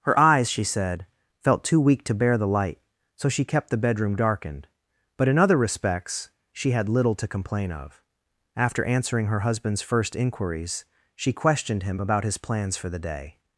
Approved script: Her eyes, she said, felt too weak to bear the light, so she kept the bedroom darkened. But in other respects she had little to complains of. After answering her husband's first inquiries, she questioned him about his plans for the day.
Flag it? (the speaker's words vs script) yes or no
yes